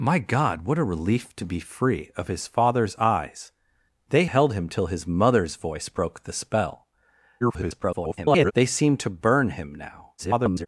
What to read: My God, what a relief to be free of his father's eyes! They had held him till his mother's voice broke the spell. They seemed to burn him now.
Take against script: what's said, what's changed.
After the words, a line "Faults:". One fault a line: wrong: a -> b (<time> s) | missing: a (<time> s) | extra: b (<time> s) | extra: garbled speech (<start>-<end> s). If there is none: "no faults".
My God, what a relief to be free of his father's eyes! They held him till his mother's voice broke the spell. [garbled] They seemed to burn him now. [garbled]
Faults:
missing: had (4.2 s)
extra: garbled speech (7.4-8.5 s)
extra: garbled speech (10.2-10.7 s)